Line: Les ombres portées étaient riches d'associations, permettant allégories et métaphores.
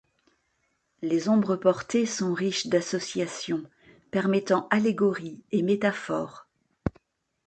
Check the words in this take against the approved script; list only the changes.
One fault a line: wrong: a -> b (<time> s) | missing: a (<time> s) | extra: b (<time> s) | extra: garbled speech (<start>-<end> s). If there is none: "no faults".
wrong: étaient -> sont (2.1 s)